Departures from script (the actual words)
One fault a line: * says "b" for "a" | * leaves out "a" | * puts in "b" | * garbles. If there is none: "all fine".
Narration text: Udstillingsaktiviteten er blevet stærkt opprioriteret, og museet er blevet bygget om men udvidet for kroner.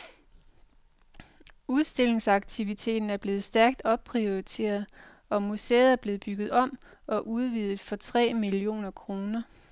* says "og" for "men"
* puts in "tre millioner"